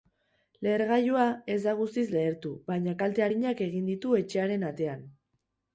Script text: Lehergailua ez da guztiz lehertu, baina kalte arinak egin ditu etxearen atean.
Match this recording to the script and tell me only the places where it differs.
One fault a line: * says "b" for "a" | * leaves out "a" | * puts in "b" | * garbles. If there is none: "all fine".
all fine